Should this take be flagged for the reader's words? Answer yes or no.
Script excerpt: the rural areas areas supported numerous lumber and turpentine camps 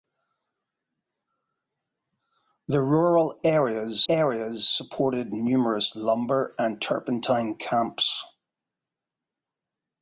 no